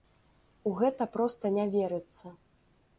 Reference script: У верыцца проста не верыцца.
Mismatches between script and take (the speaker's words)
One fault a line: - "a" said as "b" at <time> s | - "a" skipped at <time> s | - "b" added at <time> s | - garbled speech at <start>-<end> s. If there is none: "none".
- "верыцца" said as "гэта" at 0.8 s